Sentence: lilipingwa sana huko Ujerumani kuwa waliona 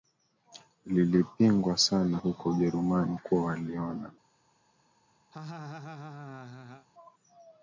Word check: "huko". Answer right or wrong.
right